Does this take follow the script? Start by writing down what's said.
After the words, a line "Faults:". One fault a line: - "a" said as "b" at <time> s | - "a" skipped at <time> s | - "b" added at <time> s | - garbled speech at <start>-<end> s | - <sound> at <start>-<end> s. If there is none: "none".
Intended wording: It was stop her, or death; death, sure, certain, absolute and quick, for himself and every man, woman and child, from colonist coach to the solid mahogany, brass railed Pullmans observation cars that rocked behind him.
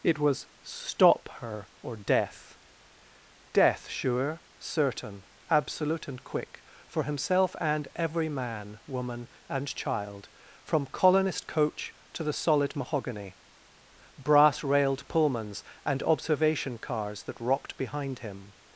It was stop her, or death; death, sure, certain, absolute and quick, for himself and every man, woman and child, from colonist coach to the solid mahogany, brass railed Pullmans and observation cars that rocked behind him.
Faults:
- "and" added at 15.8 s